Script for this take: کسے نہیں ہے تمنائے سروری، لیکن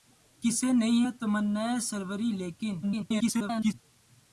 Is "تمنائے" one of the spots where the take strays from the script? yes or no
no